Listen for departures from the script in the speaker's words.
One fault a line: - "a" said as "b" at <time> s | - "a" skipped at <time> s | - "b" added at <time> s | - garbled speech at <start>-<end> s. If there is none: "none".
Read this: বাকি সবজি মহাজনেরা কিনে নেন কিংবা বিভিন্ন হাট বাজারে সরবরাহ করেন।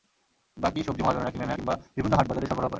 none